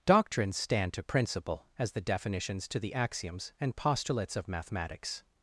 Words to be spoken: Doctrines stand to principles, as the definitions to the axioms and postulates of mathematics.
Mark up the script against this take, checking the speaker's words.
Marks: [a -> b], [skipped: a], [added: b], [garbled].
Doctrines stand to [principles, -> principle] as the definitions to the axioms and postulates of mathematics.